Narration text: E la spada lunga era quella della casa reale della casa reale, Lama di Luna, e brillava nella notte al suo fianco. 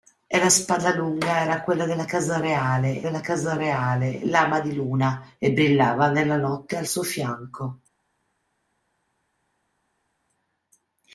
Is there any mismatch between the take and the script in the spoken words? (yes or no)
no